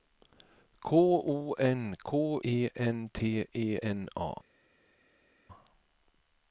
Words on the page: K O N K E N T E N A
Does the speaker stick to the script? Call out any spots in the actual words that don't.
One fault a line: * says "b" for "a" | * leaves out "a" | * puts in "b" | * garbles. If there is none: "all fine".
all fine